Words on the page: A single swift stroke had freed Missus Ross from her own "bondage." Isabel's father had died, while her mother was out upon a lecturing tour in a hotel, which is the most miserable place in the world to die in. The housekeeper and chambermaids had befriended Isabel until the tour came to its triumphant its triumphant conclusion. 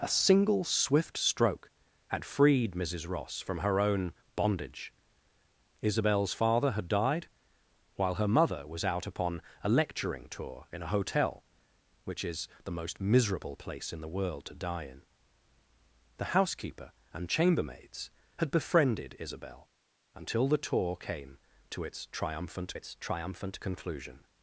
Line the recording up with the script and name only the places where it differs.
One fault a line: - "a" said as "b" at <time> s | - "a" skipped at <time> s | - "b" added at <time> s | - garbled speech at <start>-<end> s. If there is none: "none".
none